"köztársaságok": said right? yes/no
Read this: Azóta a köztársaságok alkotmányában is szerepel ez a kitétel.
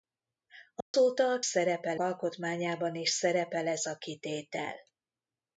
no